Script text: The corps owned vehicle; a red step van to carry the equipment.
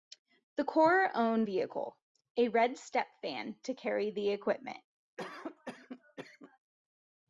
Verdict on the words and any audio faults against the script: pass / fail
fail